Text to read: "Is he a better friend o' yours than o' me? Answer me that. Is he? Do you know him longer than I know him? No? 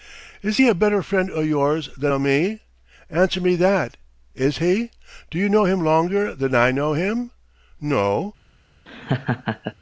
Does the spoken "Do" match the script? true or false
true